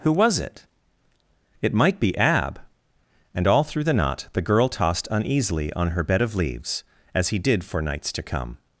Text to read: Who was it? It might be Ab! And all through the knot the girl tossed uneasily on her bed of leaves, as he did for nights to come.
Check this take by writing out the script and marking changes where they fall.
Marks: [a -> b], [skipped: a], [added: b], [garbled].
Who was it? It might be Ab! And all through the knot the girl tossed uneasily on her bed of leaves, as he did for nights to come.